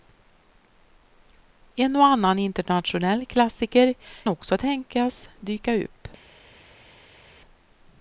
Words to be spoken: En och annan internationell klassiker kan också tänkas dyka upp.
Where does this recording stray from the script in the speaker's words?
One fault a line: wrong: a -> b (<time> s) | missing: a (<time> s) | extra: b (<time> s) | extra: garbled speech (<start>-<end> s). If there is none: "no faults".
missing: kan (3.9 s)